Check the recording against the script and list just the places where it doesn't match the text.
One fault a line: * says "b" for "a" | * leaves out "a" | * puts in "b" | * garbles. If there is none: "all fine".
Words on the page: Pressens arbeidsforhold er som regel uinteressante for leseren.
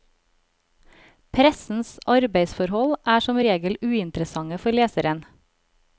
all fine